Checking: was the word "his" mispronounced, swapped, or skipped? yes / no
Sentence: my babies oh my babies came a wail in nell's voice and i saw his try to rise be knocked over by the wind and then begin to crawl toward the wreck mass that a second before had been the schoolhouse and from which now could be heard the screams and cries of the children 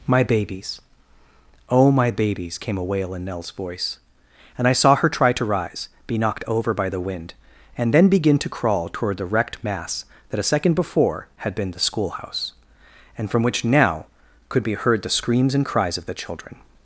yes